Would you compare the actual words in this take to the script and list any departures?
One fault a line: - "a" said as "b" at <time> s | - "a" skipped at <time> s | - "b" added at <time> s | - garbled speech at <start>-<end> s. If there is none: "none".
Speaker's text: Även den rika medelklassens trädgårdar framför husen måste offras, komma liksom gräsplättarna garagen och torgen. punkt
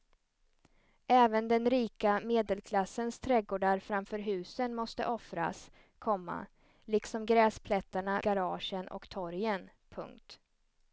none